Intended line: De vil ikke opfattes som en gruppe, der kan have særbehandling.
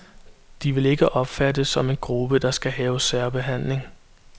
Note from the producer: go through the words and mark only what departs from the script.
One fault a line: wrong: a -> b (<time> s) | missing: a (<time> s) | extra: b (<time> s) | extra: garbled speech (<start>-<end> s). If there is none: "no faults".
wrong: kan -> skal (2.5 s)